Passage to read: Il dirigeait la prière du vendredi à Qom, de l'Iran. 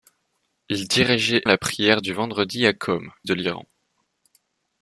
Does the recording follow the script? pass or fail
pass